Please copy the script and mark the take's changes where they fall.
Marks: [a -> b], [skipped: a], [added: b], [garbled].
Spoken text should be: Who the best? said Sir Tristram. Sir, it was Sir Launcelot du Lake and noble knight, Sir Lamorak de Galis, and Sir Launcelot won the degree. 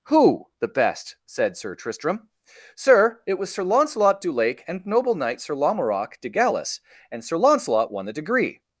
Who the best? said Sir Tristram. Sir, it was Sir Launcelot du Lake and noble knight, Sir Lamorak de Galis, and Sir Launcelot won the degree.